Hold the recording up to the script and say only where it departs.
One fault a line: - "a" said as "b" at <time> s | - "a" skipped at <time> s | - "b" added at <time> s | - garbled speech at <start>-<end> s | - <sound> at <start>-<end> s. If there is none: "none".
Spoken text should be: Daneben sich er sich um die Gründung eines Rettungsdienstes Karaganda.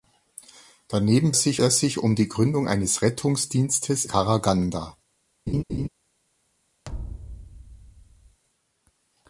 - laugh at 5.5-5.9 s
- thud at 6.8-8.4 s